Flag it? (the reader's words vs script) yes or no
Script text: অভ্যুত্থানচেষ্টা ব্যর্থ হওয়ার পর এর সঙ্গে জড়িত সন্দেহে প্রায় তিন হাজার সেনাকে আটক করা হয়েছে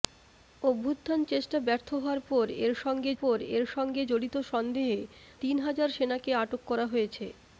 yes